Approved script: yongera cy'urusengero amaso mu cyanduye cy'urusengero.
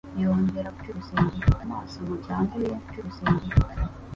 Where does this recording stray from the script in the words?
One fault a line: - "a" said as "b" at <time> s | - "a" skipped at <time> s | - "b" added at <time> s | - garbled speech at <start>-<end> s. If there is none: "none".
none